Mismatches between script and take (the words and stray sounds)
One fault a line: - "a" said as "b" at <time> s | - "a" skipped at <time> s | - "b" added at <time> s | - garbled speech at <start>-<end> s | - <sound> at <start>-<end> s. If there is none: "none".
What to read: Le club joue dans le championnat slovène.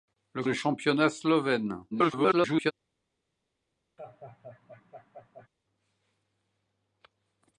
- "club joue dans" skipped at 0.4 s
- garbled speech at 1.9-2.7 s
- laugh at 4.0-5.5 s